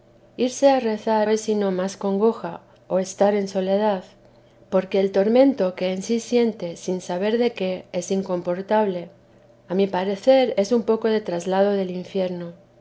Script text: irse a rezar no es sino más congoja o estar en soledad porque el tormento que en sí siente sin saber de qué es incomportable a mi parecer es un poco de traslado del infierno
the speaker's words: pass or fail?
fail